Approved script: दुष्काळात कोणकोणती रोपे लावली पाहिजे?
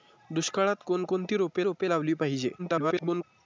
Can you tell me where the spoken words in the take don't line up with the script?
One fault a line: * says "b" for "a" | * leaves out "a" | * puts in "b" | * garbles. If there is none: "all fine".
* puts in "रोपे"
* garbles